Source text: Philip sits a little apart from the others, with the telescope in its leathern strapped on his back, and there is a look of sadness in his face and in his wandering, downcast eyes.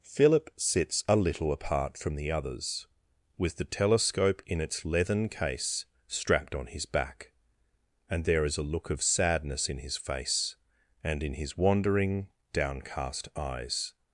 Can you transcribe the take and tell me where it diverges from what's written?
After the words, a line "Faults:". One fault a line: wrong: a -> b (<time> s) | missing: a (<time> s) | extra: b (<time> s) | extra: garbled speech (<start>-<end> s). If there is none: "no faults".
Philip sits a little apart from the others, with the telescope in its leathern case strapped on his back, and there is a look of sadness in his face and in his wandering, downcast eyes.
Faults:
extra: case (5.3 s)